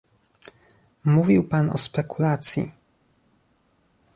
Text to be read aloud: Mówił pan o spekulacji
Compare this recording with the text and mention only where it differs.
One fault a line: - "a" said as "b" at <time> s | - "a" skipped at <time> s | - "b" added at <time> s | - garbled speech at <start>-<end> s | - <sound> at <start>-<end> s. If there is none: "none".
none